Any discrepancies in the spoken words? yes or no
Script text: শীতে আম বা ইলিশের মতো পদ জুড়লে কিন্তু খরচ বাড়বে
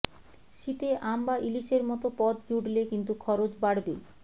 no